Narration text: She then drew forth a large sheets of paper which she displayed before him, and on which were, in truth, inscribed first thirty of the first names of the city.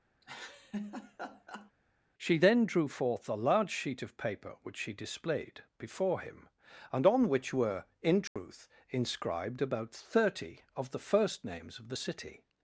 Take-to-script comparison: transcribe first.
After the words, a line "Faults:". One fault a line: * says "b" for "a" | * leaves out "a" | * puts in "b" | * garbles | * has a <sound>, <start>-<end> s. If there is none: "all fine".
She then drew forth a large sheet of paper which she displayed before him, and on which were, in truth, inscribed about thirty of the first names of the city.
Faults:
* has a laugh, 0.2-1.7 s
* says "sheet" for "sheets"
* has a dropout, 8.3-8.4 s
* says "about" for "first"